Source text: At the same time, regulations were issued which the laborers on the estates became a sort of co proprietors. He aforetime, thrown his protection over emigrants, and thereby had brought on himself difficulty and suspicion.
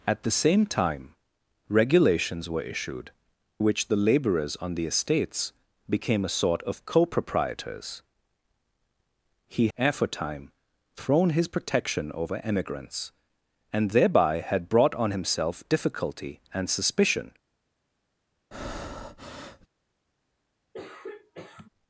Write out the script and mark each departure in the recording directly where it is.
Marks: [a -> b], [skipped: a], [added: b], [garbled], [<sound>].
At the same time, regulations were issued which the laborers on the estates became a sort of co proprietors. He aforetime, thrown his protection over emigrants, and thereby had brought on himself difficulty and suspicion. [breath] [throat clearing]